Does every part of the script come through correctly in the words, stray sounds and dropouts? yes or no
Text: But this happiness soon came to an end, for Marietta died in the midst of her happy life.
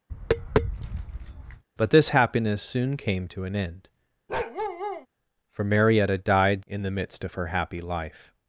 no